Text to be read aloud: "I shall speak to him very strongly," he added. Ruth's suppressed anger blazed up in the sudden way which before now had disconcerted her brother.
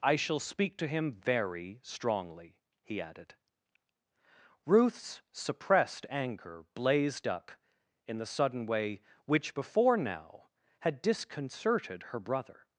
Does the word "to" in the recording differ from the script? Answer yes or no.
no